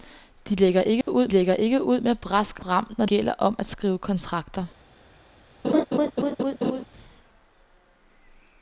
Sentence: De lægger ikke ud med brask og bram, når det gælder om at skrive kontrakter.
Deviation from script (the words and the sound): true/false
true